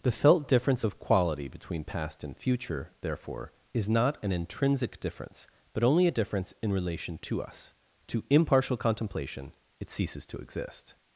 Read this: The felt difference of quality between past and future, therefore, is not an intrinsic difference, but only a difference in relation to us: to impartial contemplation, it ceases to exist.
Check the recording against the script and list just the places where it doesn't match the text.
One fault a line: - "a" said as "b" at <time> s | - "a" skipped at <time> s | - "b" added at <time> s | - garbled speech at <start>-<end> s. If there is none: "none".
none